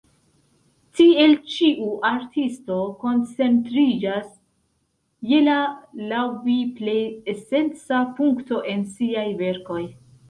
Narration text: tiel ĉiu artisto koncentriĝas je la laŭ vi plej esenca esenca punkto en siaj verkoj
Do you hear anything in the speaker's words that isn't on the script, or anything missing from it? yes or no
yes